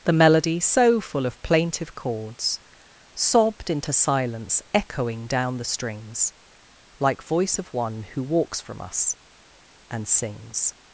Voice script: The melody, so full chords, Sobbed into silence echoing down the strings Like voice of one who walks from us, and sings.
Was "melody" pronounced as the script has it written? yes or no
yes